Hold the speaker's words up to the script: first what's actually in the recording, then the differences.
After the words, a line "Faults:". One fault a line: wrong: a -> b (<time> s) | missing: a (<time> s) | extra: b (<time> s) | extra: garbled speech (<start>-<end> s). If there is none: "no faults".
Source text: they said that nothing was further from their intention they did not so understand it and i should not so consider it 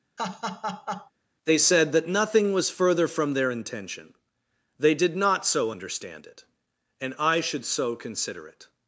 they said that nothing was further from their intention they did not so understand it and i should so consider it
Faults:
missing: not (7.6 s)